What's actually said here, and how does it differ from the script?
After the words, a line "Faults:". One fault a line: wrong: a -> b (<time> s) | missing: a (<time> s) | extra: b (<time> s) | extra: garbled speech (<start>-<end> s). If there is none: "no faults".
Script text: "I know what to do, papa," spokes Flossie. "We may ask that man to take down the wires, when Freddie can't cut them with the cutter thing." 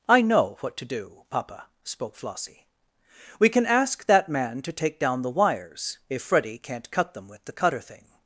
"I know what to do, papa," spoke Flossie. "We can ask that man to take down the wires, if Freddie can't cut them with the cutter thing."
Faults:
wrong: spokes -> spoke (1.8 s)
wrong: may -> can (3.5 s)
wrong: when -> if (6.1 s)